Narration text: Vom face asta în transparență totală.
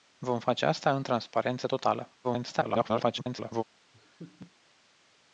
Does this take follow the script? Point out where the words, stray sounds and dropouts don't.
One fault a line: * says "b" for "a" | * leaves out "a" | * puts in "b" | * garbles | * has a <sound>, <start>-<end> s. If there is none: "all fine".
* garbles
* has a laugh, 3.9-4.5 s